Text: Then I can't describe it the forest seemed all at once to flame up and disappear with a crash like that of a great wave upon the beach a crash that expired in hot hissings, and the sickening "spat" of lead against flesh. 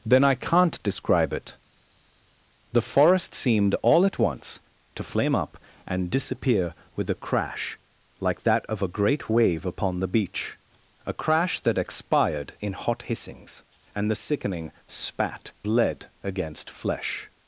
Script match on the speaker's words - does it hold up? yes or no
no